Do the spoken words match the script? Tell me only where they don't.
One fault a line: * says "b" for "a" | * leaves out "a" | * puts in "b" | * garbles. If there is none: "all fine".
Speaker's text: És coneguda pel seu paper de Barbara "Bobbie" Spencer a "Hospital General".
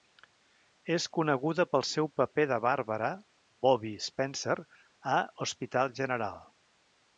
all fine